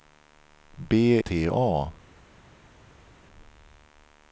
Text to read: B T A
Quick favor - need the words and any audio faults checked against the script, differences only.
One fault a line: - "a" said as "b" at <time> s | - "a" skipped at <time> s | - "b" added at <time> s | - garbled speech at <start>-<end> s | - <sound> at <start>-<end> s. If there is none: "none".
none